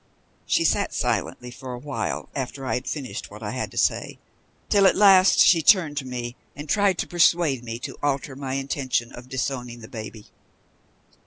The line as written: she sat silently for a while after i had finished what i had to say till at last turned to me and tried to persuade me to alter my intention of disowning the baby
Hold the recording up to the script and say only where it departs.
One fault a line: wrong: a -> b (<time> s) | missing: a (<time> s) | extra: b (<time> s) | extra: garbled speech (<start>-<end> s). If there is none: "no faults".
extra: she (5.4 s)